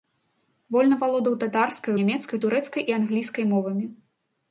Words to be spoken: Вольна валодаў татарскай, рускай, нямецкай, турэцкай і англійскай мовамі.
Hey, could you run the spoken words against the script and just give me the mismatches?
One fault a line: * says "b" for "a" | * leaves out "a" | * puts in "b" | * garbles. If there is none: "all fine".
* leaves out "рускай"